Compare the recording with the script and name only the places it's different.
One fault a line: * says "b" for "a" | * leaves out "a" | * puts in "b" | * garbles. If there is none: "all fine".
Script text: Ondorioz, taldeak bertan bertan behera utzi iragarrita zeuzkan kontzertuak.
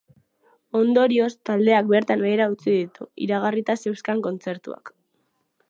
* leaves out "bertan"
* puts in "ditu"